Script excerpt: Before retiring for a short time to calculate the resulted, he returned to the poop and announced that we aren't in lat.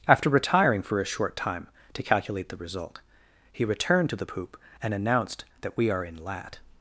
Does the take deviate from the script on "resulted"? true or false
true